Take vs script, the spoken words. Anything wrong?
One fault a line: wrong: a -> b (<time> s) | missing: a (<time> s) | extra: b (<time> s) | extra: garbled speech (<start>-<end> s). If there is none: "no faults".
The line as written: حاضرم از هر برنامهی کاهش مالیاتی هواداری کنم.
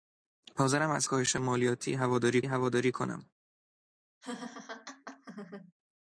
missing: هر برنامهی (1.1 s)
extra: هواداری (2.4 s)